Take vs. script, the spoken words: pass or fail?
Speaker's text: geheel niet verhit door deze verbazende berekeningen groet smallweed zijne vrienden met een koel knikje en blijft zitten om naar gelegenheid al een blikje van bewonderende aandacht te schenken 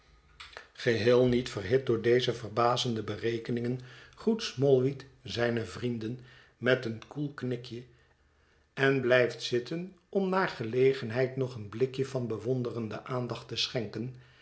fail